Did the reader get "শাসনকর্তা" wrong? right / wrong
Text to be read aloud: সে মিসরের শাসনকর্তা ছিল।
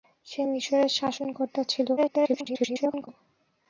right